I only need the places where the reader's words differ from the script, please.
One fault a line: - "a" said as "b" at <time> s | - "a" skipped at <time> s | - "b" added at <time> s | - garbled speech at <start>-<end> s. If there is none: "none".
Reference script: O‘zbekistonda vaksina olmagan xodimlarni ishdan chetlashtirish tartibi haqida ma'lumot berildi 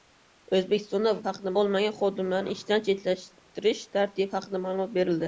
- "vaksina" said as "haqida" at 1.3 s